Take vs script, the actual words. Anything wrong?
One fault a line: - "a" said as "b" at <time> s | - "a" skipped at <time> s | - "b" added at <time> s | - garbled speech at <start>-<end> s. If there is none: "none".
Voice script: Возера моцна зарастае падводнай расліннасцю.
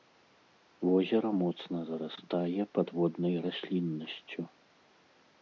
none